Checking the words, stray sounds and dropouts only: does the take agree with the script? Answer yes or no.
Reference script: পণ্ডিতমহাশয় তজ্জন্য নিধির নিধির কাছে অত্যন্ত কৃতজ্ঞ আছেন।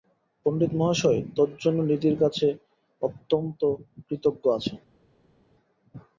no